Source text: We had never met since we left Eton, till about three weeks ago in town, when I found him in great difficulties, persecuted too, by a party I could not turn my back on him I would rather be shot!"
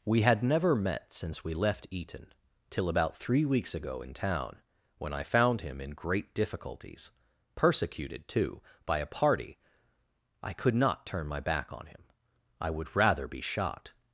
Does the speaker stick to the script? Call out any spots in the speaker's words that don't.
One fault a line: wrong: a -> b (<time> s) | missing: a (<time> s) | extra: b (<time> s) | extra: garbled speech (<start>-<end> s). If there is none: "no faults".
no faults